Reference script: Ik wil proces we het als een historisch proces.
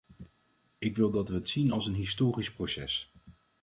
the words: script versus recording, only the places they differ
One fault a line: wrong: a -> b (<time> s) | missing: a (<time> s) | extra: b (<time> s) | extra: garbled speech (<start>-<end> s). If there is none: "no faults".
wrong: proces -> dat (1.1 s)
extra: zien (1.5 s)